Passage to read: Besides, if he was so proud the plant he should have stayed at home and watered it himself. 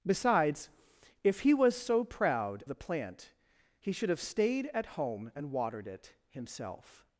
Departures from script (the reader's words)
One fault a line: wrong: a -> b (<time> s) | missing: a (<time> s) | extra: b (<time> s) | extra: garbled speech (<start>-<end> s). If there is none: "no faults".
no faults